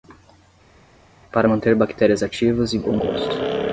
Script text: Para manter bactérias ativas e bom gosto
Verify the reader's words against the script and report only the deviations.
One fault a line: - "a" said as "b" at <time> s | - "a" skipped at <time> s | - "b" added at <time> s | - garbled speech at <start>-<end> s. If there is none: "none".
none